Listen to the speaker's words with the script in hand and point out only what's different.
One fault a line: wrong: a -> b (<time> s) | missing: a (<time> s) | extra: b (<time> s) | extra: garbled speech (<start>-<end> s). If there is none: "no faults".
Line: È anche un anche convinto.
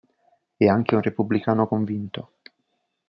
wrong: anche -> repubblicano (1.0 s)